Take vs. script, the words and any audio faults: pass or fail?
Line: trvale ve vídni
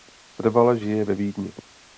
fail